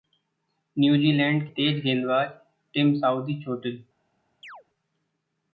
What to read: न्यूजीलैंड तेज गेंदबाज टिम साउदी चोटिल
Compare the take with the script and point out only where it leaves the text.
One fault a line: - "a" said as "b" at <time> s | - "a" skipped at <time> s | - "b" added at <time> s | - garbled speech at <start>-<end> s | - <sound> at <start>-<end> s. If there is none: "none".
- chirp at 4.4-4.6 s